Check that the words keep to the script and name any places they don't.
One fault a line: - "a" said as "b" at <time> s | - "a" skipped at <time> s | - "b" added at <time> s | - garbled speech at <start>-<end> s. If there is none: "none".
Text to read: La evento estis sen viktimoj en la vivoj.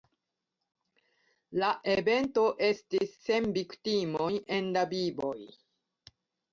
none